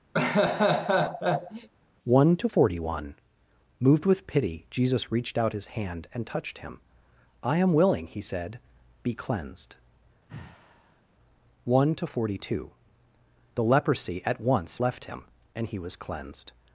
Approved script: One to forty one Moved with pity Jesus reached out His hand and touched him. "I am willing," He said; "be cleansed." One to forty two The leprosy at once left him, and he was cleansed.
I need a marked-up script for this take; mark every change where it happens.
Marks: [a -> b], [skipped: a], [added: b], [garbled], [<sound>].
[laugh] One to forty one Moved with pity Jesus reached out His hand and touched him. "I am willing," He said; "be cleansed." [sigh] One to forty two The leprosy at once left him, and he was cleansed.